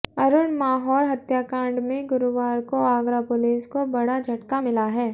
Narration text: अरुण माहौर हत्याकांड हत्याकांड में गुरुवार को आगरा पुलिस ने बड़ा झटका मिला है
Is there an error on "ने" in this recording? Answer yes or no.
yes